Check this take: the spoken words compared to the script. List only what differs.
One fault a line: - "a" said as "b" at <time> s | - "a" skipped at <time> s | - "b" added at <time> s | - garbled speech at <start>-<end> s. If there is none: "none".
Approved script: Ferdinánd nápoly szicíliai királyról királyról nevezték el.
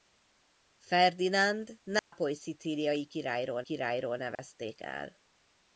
none